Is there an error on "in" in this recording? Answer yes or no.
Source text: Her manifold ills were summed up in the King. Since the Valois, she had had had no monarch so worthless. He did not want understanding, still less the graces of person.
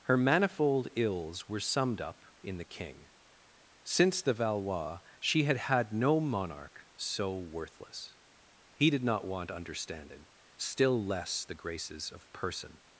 no